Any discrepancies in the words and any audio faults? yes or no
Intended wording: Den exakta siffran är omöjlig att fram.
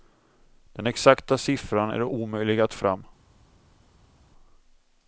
no